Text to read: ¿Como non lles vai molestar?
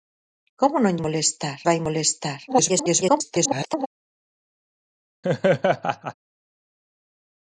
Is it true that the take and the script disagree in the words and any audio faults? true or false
true